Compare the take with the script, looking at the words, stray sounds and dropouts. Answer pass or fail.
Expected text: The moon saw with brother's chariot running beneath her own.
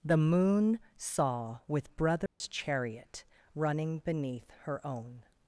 fail